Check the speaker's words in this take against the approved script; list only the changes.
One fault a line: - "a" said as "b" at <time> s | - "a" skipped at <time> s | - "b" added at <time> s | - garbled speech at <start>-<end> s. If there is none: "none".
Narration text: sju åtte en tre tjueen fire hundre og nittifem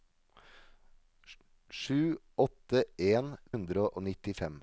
- "tre tjueen fire" skipped at 3.4 s